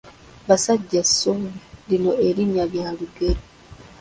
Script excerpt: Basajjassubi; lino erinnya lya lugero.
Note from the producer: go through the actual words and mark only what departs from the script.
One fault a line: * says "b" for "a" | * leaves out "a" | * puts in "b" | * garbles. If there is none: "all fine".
all fine